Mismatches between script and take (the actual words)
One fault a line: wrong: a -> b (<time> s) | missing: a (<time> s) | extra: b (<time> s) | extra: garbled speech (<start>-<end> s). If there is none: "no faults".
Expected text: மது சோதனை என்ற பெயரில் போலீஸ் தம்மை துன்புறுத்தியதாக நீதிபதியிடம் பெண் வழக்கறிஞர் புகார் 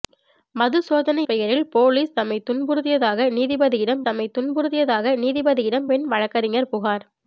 missing: என்ற (1.2 s)
extra: தம்மை துன்புறுத்தியதாக நீதிபதியிடம் (4.0 s)